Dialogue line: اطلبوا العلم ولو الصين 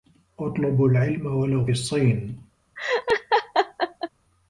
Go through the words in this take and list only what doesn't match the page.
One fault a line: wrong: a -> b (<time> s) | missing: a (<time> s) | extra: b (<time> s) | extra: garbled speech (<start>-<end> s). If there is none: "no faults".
no faults